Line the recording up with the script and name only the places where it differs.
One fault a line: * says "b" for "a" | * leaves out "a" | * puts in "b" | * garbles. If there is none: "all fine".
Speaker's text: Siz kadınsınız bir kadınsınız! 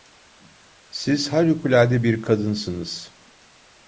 * says "harikulade" for "kadınsınız"